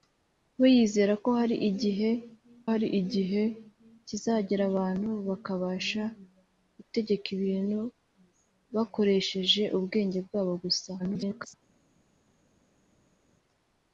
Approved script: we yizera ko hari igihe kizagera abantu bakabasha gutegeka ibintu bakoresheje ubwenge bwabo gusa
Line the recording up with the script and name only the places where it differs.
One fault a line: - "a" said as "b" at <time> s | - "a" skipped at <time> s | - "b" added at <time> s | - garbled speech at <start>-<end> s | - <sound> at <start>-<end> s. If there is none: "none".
- "hari igihe" added at 2.7 s
- garbled speech at 11.0-11.5 s